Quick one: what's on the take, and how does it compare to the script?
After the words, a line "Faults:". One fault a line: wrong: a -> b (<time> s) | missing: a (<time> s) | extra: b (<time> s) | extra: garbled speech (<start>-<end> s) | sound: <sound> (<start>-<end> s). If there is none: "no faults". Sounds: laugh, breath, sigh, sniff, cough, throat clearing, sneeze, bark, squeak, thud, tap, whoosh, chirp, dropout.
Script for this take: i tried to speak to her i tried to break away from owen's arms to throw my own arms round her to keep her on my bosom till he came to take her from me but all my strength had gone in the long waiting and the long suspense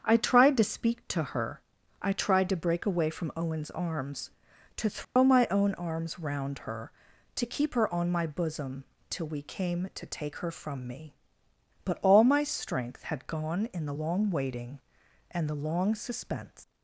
i tried to speak to her i tried to break away from owen's arms to throw my own arms round her to keep her on my bosom till we came to take her from me but all my strength had gone in the long waiting and the long suspense
Faults:
sound: dropout (5.0-5.2 s)
wrong: he -> we (9.3 s)